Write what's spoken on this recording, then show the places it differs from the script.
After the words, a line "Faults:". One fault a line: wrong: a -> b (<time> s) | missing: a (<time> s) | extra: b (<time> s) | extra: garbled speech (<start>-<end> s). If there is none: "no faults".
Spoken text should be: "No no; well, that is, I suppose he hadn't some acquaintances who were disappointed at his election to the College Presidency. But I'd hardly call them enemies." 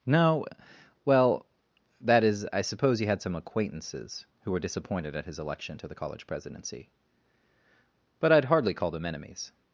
"No; well, that is, I suppose he had some acquaintances who were disappointed at his election to the College Presidency. But I'd hardly call them enemies."
Faults:
missing: no (0.5 s)
wrong: hadn't -> had (3.0 s)